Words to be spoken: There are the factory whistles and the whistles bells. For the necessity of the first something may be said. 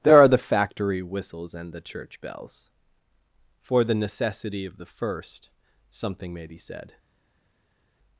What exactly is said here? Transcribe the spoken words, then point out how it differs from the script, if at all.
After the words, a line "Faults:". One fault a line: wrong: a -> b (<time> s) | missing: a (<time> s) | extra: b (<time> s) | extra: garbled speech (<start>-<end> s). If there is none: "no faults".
There are the factory whistles and the church bells. For the necessity of the first something may be said.
Faults:
wrong: whistles -> church (1.8 s)